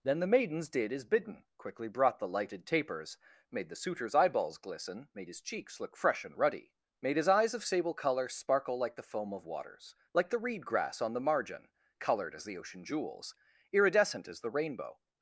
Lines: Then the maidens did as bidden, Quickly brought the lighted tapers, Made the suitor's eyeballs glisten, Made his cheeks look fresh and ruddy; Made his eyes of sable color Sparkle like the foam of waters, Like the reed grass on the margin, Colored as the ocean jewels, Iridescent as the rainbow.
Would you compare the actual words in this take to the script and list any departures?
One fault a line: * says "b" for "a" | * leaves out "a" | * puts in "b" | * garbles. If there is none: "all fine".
all fine